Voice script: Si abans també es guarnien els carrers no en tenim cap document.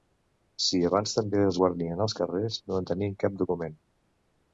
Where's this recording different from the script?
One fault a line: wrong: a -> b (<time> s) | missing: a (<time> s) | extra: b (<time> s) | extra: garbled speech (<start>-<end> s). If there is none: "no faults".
no faults